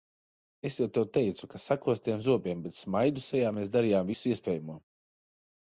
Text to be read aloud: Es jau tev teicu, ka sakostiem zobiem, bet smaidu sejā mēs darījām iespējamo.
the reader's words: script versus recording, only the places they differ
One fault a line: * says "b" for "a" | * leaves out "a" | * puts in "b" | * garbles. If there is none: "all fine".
* puts in "visu"